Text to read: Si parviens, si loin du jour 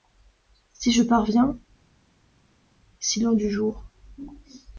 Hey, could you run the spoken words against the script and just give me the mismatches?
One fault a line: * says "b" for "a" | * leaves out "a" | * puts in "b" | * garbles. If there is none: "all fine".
* puts in "je"